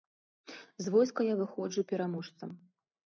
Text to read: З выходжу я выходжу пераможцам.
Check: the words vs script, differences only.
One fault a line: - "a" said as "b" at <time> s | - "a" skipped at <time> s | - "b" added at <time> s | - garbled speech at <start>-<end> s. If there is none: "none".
- "выходжу" said as "войска" at 0.9 s